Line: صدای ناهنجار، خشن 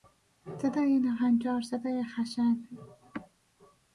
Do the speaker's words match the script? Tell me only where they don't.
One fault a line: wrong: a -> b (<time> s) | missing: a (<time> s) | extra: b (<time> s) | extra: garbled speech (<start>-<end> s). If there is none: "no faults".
extra: صدای (1.6 s)